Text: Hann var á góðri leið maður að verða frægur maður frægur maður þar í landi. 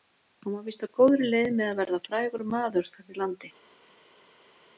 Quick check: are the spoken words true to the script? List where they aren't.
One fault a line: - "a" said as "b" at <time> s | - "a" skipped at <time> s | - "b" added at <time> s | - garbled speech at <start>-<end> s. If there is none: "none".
- "víst" added at 0.7 s
- "maður" said as "með" at 1.6 s
- "frægur maður" skipped at 2.9 s